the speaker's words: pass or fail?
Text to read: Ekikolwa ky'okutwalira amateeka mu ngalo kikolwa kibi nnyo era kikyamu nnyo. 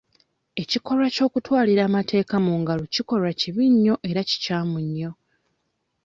pass